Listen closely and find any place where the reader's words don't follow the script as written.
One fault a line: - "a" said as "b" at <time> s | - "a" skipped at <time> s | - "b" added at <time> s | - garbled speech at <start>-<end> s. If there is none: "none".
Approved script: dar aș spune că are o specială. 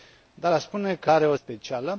none